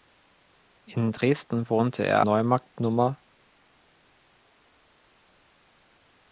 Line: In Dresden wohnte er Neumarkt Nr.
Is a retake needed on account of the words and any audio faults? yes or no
no